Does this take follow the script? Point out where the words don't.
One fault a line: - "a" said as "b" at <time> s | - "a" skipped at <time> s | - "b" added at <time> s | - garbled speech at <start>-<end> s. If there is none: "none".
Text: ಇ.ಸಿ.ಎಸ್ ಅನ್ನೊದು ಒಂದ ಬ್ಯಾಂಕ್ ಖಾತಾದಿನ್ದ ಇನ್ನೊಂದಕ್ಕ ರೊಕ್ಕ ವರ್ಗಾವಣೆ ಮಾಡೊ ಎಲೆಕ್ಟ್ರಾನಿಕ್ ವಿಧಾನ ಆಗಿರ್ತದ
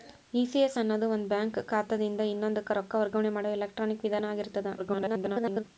- garbled speech at 4.8-5.6 s